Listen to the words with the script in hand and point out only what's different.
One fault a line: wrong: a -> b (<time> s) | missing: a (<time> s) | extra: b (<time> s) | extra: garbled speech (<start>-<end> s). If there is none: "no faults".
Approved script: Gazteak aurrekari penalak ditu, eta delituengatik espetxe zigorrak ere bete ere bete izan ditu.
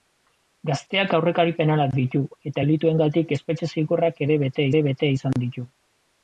no faults